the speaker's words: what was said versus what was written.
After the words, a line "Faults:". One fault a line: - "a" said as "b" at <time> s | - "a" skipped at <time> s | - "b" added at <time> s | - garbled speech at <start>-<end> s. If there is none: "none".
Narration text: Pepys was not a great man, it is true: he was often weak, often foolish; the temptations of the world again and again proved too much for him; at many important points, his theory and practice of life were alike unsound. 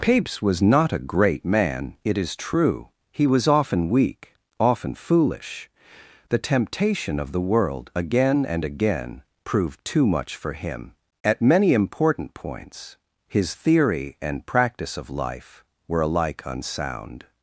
Pepys was not a great man, it is true: he was often weak, often foolish; the temptation of the world again and again proved too much for him; at many important points, his theory and practice of life were alike unsound.
Faults:
- "temptations" said as "temptation" at 6.4 s